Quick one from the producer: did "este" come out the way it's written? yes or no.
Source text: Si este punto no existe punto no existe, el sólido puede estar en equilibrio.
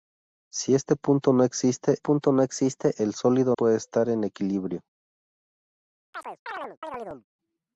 yes